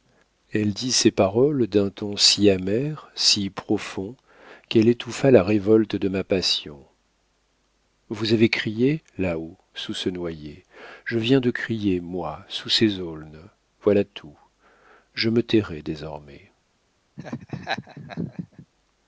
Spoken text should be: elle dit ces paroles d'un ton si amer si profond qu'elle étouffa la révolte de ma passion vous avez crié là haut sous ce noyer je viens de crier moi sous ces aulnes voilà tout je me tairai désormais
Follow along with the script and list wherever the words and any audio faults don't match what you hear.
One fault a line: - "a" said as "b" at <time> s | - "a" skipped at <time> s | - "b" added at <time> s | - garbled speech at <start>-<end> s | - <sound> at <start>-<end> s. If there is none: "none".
- laugh at 17.2-18.7 s